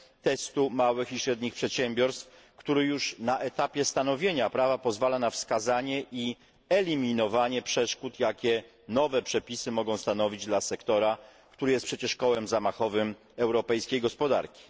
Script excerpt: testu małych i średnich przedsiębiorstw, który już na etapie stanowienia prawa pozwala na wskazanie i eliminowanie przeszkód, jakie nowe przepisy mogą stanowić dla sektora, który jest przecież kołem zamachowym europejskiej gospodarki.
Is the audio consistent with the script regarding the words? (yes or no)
yes